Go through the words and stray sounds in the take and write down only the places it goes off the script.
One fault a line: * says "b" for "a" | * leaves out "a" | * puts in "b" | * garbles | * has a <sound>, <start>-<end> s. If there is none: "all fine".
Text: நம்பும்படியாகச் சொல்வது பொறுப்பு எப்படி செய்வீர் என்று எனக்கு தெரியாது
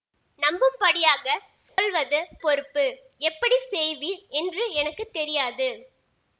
* has a dropout, 1.7-1.8 s